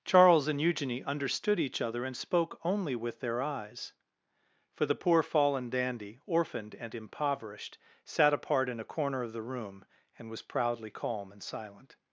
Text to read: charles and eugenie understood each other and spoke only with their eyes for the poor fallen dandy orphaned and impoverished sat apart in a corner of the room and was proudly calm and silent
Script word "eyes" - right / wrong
right